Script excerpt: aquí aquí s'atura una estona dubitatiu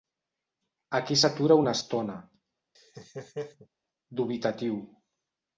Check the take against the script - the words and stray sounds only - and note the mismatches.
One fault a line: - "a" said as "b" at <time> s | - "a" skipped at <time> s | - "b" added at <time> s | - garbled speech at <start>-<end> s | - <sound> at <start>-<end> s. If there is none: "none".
- "aquí" skipped at 1.2 s
- laugh at 2.7-3.7 s